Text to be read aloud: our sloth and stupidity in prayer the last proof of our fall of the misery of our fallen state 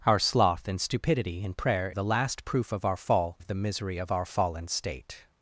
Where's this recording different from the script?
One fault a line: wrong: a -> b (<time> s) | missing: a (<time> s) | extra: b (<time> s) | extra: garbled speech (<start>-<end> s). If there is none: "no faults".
no faults